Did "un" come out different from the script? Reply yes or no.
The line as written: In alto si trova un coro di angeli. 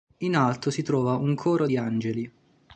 no